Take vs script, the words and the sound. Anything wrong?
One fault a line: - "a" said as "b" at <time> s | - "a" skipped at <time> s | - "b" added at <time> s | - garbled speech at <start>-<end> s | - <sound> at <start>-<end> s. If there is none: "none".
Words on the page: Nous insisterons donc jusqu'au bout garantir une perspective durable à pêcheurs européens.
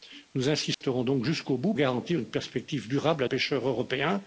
- dropout at 0.7-0.8 s